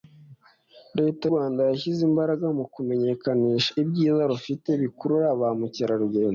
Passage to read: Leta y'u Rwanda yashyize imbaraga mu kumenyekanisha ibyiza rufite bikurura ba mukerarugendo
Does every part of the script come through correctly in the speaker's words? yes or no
no